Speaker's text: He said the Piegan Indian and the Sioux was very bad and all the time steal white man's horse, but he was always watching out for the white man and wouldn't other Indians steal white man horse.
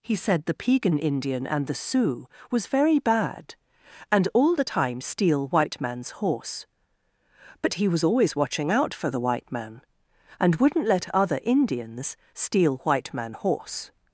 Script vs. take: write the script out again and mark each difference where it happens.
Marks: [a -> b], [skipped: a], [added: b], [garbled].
He said the Piegan Indian and the Sioux was very bad and all the time steal white man's horse, but he was always watching out for the white man and wouldn't [added: let] other Indians steal white man horse.